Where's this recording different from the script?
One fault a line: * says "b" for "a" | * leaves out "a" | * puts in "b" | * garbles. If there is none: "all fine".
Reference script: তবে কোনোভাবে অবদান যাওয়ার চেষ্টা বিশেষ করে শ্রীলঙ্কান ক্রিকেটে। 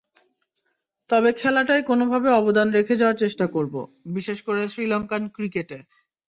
* puts in "খেলাটায়"
* puts in "রেখে"
* puts in "করব"